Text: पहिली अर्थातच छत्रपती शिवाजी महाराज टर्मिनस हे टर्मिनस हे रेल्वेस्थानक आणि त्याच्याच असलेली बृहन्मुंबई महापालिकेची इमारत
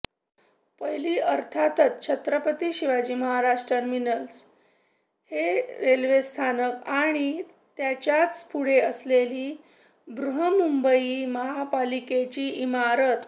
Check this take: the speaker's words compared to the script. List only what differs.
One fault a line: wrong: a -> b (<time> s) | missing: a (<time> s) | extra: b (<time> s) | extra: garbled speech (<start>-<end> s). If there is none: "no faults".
missing: टर्मिनस हे (5.6 s)
extra: पुढे (8.4 s)